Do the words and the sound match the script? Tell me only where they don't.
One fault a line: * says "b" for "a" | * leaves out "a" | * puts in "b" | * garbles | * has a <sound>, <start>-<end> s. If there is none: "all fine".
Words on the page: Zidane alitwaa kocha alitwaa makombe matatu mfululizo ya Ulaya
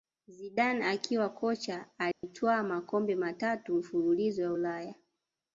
* says "akiwa" for "alitwaa"
* has a dropout, 2.1-2.2 s